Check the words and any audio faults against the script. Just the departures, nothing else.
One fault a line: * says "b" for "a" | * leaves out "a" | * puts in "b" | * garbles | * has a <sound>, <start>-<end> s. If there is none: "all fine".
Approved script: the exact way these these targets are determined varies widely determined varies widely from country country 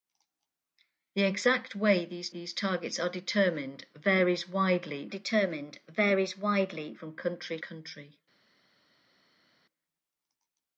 all fine